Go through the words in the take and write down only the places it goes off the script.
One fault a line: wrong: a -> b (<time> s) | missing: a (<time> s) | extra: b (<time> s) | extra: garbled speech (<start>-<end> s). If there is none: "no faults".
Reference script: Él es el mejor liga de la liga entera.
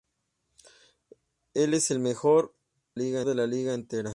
no faults